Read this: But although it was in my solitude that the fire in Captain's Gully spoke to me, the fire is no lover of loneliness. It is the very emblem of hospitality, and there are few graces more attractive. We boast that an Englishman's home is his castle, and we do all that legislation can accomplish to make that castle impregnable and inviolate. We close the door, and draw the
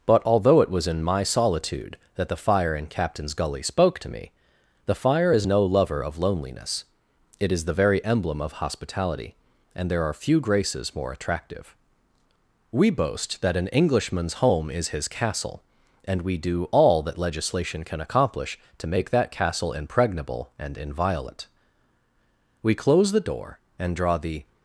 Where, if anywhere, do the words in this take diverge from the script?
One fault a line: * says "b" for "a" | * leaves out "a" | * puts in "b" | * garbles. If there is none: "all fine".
all fine